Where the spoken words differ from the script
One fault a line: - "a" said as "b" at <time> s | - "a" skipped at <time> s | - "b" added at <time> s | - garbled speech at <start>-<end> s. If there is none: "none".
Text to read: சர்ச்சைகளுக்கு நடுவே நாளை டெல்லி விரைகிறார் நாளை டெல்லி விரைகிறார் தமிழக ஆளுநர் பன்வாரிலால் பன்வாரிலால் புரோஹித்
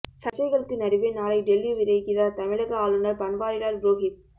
- "நாளை டெல்லி விரைகிறார்" skipped at 2.4 s
- "பன்வாரிலால்" skipped at 3.8 s